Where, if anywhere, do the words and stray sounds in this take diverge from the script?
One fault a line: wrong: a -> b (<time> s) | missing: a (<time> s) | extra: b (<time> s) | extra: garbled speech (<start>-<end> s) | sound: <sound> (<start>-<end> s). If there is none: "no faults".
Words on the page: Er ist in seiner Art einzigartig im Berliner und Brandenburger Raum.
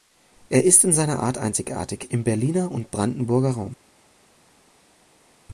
no faults